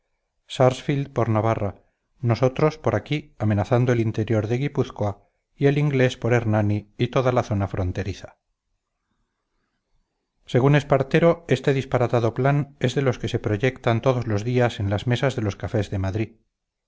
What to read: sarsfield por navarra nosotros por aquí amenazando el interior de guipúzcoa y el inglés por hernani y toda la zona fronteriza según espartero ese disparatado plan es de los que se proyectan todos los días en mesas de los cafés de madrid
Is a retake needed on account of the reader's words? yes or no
yes